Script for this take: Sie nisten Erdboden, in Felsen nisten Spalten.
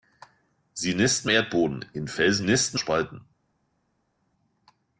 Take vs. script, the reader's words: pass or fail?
pass